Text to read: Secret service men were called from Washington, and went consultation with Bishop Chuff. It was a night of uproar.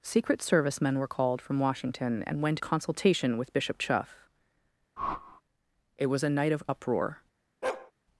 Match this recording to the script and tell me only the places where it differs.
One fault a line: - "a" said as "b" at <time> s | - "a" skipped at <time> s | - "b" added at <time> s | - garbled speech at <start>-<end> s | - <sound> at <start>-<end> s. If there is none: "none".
- whoosh at 5.0-5.4 s
- bark at 7.6-7.9 s